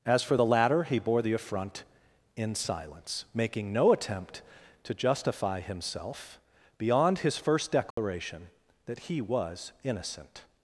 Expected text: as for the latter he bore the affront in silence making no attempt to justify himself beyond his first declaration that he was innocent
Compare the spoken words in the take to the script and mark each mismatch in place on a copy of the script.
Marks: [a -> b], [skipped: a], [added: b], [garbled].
as for the latter he bore the affront in silence making no attempt to justify himself beyond his first declaration that he was innocent